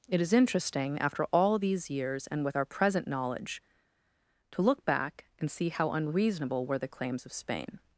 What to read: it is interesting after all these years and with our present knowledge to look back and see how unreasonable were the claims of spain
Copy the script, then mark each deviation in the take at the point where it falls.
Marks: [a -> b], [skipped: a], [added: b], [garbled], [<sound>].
it is interesting after all these years and with our present knowledge to look back and see how unreasonable were the claims of spain